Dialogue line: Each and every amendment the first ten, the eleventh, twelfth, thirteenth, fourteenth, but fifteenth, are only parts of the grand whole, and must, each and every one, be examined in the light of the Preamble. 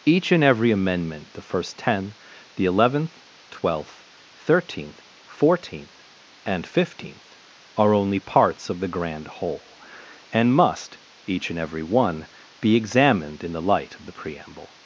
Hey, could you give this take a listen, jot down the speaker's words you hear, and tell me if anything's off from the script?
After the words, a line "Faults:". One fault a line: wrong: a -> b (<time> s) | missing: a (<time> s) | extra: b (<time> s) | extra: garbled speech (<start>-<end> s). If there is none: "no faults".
Each and every amendment the first ten, the eleventh, twelfth, thirteenth, fourteenth, and fifteenth, are only parts of the grand whole, and must, each and every one, be examined in the light of the Preamble.
Faults:
wrong: but -> and (6.4 s)